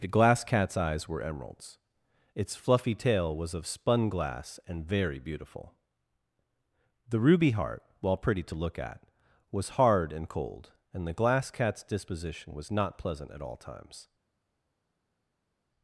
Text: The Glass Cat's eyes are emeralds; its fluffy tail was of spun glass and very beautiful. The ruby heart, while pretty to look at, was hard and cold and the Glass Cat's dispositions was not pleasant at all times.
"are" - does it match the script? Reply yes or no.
no